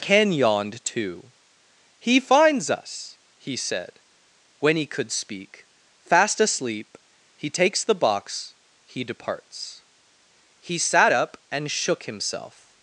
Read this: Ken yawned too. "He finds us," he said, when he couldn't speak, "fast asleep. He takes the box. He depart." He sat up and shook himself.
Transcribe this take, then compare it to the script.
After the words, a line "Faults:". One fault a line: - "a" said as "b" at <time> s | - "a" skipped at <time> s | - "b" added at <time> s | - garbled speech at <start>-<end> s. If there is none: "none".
Ken yawned too. "He finds us," he said, when he could speak, "fast asleep. He takes the box. He departs." He sat up and shook himself.
Faults:
- "couldn't" said as "could" at 4.8 s
- "depart" said as "departs" at 9.0 s